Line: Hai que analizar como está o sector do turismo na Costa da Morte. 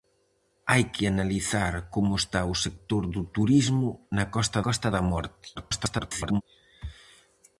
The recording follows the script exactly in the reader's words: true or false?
false